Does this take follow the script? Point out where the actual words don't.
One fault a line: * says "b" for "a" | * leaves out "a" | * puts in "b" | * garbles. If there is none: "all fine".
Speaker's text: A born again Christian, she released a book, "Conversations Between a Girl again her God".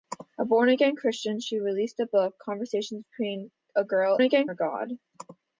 all fine